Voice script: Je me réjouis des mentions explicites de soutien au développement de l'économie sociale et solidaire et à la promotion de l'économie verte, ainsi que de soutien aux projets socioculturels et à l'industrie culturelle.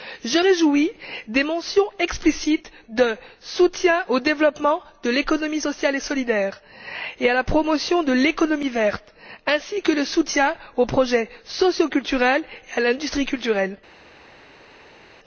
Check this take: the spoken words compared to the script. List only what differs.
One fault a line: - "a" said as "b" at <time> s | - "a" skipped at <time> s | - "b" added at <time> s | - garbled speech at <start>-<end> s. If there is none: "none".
- "me" skipped at 0.4 s